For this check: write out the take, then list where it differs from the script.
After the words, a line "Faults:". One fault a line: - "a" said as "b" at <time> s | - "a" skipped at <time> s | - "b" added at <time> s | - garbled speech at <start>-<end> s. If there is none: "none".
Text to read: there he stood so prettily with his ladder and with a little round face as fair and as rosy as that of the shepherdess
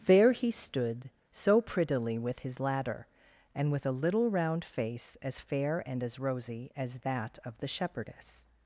there he stood so prettily with his ladder and with a little round face as fair and as rosy as that of the shepherdess
Faults:
none